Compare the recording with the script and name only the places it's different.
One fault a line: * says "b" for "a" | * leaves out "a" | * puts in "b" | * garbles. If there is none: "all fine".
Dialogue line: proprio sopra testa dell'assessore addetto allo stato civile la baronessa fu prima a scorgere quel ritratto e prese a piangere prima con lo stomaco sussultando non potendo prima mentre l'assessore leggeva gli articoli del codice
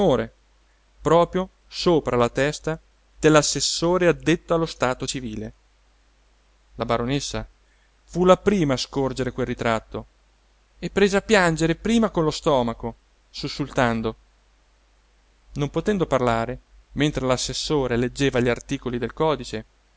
* puts in "la"
* puts in "la"
* says "parlare" for "prima"